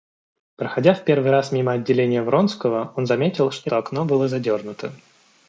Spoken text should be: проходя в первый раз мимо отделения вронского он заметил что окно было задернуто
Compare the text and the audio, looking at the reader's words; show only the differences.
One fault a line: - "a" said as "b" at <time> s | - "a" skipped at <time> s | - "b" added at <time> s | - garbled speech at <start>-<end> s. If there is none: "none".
none